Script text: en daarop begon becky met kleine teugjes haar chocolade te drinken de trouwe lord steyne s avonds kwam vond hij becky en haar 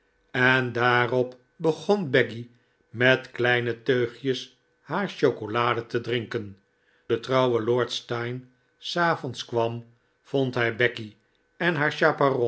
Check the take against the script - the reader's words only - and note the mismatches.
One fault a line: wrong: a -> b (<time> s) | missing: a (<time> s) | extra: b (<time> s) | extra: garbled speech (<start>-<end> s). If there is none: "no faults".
no faults